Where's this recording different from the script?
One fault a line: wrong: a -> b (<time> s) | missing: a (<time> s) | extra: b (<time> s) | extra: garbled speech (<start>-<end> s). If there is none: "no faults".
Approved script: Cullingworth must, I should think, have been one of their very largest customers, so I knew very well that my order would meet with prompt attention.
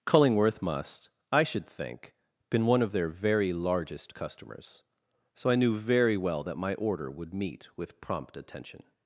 missing: have (2.1 s)